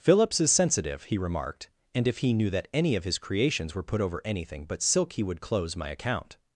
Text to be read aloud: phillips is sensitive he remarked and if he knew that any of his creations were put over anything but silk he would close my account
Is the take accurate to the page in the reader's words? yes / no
yes